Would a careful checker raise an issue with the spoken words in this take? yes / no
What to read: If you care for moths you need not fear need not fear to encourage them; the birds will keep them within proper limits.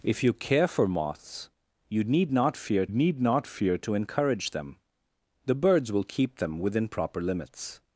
no